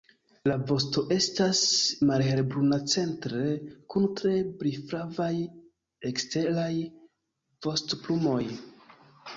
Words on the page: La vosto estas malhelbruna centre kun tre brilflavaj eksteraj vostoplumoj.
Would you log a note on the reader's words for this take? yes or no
no